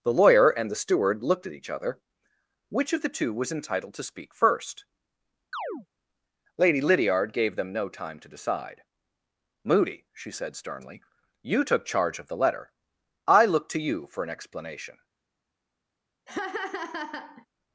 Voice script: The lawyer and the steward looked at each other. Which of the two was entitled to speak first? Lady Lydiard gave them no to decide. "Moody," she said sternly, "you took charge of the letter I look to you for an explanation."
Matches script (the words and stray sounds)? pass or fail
fail